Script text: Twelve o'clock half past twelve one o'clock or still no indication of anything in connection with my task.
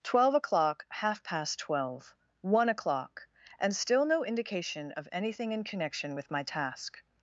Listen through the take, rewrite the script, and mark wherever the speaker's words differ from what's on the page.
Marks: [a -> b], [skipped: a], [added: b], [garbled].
Twelve o'clock half past twelve one o'clock [or -> and] still no indication of anything in connection with my task.